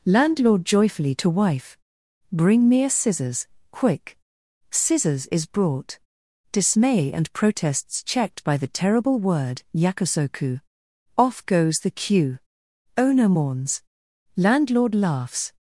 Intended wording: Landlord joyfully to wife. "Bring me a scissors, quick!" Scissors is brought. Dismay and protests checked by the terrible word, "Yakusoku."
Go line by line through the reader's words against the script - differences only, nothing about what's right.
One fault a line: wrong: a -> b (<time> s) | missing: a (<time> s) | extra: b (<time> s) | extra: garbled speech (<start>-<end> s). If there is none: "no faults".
extra: Off goes the queue Owner mourns Landlord laughs (11.2 s)